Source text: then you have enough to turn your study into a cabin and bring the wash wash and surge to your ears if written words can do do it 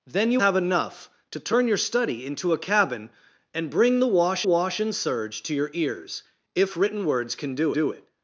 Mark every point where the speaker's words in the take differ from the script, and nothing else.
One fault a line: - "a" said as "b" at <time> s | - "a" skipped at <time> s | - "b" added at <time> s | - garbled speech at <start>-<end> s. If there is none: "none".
none